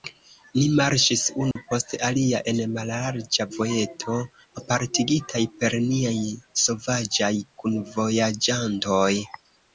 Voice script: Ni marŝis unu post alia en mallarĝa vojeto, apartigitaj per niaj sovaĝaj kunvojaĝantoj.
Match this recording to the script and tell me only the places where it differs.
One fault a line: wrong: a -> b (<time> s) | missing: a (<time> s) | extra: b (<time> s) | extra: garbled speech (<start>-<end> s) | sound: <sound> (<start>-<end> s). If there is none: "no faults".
sound: dropout (1.5-1.6 s)